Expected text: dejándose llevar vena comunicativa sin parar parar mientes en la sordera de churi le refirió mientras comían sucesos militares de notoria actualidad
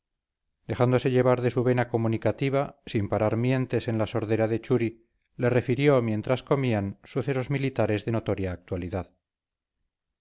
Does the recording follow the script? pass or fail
fail